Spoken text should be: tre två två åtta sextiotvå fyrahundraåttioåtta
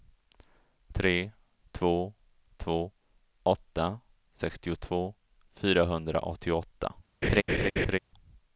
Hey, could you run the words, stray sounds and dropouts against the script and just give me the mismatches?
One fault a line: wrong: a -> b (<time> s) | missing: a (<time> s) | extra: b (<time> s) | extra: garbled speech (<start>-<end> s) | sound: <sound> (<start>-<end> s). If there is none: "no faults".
sound: laugh (7.2-8.0 s)